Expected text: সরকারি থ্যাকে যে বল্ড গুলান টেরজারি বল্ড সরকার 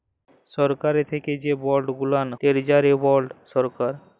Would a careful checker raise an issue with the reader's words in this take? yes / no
no